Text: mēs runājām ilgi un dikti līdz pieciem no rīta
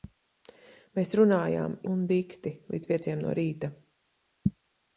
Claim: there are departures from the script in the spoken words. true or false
true